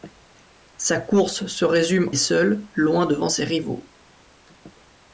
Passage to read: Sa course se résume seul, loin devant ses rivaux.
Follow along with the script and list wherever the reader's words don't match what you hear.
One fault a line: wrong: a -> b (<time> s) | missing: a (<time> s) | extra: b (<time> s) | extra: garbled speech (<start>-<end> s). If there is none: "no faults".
no faults